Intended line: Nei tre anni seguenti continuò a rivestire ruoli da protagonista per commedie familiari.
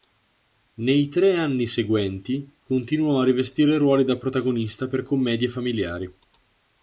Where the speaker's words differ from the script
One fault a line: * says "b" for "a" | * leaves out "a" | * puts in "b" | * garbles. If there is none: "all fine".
all fine